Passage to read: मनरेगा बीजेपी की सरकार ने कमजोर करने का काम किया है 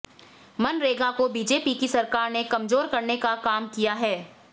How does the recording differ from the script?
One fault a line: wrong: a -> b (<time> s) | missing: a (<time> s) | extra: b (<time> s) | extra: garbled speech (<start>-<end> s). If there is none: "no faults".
extra: को (1.1 s)